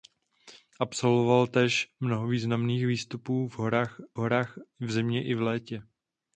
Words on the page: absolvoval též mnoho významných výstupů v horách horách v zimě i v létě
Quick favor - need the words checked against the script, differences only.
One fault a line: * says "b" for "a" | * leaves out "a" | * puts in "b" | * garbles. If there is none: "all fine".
all fine